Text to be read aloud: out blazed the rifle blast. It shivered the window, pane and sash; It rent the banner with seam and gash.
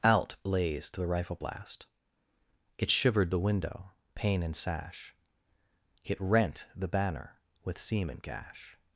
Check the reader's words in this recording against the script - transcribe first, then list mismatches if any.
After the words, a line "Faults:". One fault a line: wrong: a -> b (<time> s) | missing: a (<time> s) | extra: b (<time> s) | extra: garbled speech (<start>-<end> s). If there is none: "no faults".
out blazed the rifle blast. It shivered the window, pane and sash; It rent the banner with seam and gash.
Faults:
no faults